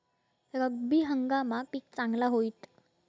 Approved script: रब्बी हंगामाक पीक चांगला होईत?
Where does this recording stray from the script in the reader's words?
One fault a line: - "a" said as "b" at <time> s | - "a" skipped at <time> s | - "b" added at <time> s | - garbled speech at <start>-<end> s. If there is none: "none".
none